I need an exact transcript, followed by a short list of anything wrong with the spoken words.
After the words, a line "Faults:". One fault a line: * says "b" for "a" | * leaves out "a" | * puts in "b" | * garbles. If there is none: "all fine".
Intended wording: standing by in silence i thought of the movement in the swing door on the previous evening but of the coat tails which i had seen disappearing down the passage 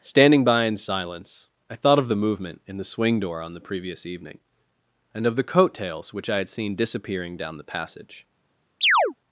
standing by in silence i thought of the movement in the swing door on the previous evening and of the coat tails which i had seen disappearing down the passage
Faults:
* says "and" for "but"